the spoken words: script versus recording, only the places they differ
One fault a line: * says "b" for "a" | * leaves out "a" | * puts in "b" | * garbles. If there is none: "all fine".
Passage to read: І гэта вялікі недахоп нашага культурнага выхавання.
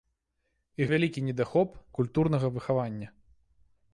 * leaves out "гэта"
* leaves out "нашага"